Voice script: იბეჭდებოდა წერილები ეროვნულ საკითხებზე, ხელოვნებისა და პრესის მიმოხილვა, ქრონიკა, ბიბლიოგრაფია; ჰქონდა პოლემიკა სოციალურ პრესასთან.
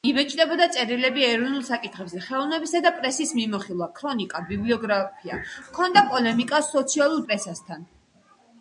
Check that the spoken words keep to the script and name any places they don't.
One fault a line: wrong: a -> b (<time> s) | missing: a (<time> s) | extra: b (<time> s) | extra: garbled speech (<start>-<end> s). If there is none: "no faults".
no faults